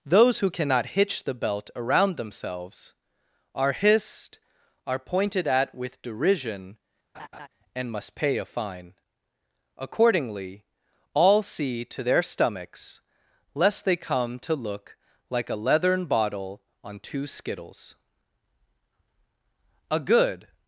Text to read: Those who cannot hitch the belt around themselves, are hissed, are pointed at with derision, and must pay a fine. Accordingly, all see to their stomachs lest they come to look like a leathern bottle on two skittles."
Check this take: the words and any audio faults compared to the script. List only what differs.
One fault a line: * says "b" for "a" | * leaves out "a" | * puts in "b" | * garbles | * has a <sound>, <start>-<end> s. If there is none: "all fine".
* has a laugh, 7.1-7.5 s
* puts in "A good"